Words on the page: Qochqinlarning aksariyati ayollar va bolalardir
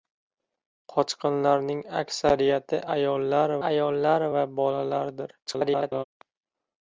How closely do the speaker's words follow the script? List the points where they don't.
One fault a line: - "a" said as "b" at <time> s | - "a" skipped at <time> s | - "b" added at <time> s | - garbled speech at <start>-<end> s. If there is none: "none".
- "ayollar" added at 3.7 s
- garbled speech at 5.5-6.0 s